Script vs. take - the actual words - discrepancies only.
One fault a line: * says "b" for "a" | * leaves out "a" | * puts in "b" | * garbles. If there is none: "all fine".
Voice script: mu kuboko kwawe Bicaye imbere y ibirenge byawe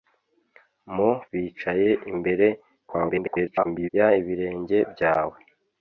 * leaves out "kuboko kwawe"
* garbles